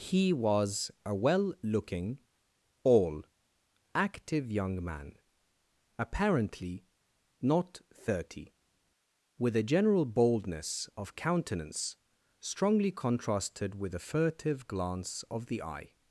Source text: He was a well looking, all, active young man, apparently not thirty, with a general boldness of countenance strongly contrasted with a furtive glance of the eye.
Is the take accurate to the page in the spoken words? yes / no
yes